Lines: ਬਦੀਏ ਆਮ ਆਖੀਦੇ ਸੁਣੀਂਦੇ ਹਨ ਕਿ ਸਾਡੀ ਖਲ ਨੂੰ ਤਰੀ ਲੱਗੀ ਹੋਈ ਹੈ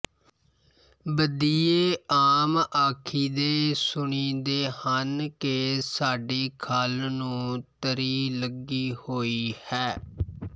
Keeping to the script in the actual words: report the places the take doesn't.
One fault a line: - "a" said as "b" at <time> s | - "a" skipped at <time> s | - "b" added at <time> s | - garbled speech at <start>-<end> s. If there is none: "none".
none